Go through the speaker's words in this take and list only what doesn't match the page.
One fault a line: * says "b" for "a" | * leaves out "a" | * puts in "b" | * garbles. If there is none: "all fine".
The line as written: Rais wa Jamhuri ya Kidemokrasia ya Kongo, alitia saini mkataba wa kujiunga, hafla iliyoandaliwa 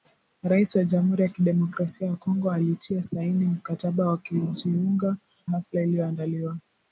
all fine